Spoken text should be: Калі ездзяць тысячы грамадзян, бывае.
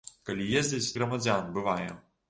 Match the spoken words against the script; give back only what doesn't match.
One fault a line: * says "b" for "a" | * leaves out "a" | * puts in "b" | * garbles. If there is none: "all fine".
* leaves out "тысячы"